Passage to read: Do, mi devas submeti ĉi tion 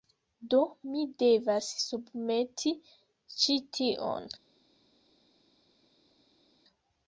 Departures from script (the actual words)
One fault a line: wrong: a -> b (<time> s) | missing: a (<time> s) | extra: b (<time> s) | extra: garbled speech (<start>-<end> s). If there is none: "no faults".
no faults